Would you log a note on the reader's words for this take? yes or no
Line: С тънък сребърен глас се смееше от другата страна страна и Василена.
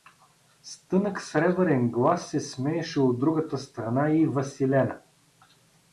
yes